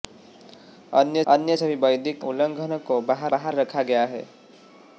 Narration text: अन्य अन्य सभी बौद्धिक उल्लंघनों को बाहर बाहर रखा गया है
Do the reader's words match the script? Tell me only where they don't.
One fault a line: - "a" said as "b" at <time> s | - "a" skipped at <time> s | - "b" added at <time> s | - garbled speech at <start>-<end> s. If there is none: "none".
none